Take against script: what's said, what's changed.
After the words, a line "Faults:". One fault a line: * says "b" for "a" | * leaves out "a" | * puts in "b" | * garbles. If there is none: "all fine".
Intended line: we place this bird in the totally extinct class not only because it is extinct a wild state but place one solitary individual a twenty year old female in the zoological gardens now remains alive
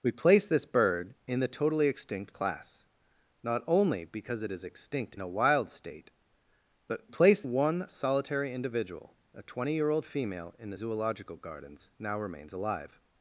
we place this bird in the totally extinct class not only because it is extinct a wild state but place one solitary individual a twenty year old female in the zoological gardens now remains alive
Faults:
all fine